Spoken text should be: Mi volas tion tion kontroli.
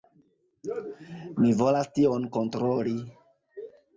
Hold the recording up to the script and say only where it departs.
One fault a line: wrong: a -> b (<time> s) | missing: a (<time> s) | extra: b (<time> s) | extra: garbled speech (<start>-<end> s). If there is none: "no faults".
missing: tion (2.2 s)